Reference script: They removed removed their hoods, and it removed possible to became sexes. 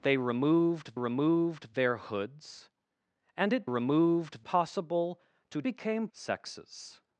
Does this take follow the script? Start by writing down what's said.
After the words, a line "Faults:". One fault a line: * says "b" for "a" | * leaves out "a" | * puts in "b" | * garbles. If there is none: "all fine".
They removed removed their hoods, and it removed possible to became sexes.
Faults:
all fine